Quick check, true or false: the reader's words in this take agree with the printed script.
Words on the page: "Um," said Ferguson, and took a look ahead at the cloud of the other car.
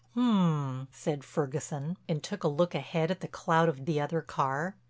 true